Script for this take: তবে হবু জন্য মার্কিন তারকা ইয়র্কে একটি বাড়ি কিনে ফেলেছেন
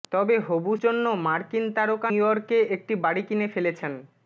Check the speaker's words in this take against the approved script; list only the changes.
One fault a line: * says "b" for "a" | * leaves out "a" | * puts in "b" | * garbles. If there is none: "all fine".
all fine